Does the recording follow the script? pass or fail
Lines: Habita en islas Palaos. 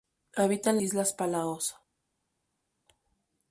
pass